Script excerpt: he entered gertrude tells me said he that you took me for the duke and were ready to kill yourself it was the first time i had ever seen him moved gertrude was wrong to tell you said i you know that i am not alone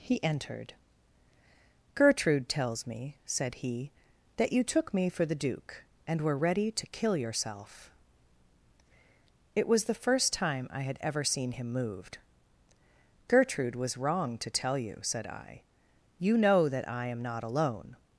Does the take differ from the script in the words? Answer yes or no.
no